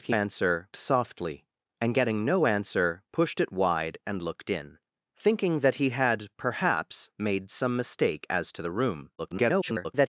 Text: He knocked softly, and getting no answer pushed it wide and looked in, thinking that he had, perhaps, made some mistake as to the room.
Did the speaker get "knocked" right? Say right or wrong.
wrong